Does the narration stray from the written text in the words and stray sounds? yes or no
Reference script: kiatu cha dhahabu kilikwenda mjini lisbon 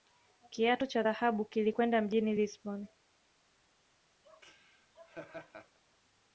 yes